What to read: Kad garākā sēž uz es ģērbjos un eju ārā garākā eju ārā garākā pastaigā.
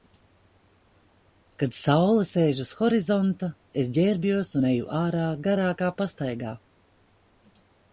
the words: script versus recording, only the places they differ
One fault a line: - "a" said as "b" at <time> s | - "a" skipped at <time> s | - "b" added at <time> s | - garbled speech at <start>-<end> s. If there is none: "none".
- "garākā" said as "saule" at 1.8 s
- "horizonta" added at 2.8 s
- "eju ārā garākā" skipped at 5.9 s